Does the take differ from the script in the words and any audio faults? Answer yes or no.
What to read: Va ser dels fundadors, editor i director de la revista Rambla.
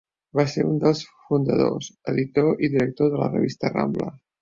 yes